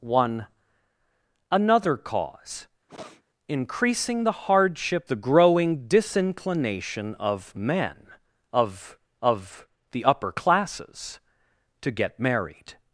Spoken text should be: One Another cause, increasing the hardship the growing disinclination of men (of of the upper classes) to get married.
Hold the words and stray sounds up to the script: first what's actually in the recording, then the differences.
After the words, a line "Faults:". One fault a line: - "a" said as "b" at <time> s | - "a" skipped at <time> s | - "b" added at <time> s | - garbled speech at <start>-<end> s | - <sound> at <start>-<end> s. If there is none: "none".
One Another cause, increasing the hardship the growing disinclination of men (of of the upper classes) to get married.
Faults:
- sniff at 2.9-3.2 s